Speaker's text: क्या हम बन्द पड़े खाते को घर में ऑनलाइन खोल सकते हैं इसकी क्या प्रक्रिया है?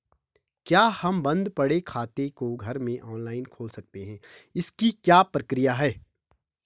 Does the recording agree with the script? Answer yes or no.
yes